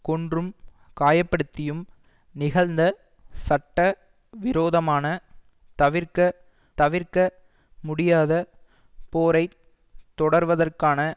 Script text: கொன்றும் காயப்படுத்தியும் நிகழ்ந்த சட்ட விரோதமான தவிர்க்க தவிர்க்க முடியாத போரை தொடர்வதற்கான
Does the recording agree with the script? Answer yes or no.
yes